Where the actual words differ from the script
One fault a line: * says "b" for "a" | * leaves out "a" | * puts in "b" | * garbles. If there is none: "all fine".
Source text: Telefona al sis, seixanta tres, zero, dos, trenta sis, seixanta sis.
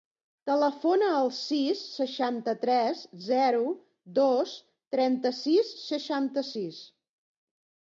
all fine